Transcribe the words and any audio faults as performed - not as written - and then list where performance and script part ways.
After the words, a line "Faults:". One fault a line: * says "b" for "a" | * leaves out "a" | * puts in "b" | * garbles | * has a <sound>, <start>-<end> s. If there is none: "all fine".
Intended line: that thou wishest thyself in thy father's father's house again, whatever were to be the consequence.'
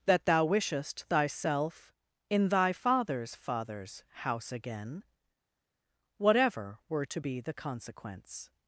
that thou wishest thyself in thy father's father's house again, whatever were to be the consequence.'
Faults:
all fine